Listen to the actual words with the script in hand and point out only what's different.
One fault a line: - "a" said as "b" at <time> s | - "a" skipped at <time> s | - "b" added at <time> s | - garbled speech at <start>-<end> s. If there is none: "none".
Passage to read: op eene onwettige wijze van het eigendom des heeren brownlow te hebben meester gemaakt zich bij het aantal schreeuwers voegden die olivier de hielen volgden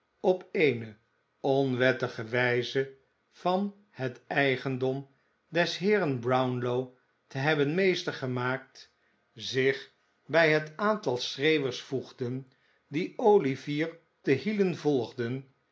none